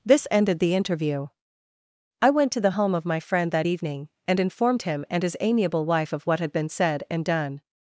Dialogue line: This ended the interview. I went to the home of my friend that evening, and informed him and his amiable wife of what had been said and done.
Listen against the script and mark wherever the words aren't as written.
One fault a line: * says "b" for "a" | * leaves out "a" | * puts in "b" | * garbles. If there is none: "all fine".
all fine